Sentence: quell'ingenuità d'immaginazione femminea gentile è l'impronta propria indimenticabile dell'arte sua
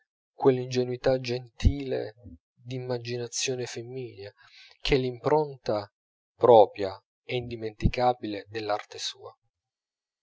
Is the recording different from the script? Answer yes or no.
yes